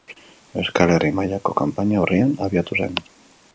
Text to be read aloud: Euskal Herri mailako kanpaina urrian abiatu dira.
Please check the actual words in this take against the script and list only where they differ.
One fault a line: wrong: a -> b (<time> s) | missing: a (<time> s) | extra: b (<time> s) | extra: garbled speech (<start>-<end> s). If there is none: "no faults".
wrong: dira -> zen (2.8 s)